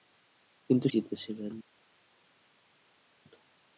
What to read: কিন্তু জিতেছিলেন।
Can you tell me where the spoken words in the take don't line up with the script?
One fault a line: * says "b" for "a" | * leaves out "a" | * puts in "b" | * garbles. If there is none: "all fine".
all fine